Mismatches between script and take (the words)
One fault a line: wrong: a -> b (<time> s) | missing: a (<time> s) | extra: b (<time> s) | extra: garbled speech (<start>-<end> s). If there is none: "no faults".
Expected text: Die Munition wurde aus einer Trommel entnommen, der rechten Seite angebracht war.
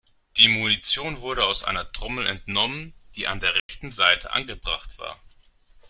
extra: die an (3.1 s)